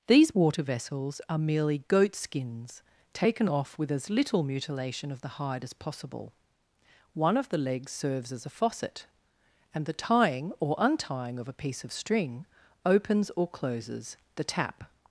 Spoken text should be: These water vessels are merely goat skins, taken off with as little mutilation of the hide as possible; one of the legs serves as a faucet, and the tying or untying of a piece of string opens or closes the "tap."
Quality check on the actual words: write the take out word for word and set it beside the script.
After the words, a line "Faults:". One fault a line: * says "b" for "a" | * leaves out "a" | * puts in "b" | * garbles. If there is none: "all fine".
These water vessels are merely goat skins, taken off with as little mutilation of the hide as possible; one of the legs serves as a faucet, and the tying or untying of a piece of string opens or closes the "tap."
Faults:
all fine